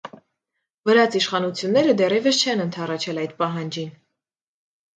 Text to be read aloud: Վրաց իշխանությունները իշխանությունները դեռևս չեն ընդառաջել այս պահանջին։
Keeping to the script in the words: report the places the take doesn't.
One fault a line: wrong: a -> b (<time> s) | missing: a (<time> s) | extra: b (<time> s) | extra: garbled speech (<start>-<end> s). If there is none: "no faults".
missing: իշխանությունները (1.9 s)
wrong: այս -> այդ (3.3 s)